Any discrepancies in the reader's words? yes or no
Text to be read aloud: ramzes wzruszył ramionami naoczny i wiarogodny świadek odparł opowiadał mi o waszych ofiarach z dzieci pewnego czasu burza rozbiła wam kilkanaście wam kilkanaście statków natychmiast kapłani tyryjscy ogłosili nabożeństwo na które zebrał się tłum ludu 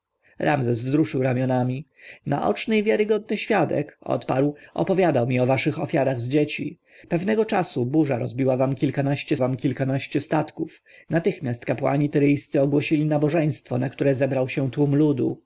no